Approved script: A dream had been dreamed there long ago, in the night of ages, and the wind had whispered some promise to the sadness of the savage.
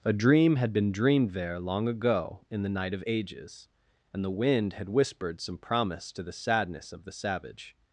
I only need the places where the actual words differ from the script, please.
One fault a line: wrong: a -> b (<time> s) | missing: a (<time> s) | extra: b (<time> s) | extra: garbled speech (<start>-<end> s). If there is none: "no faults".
no faults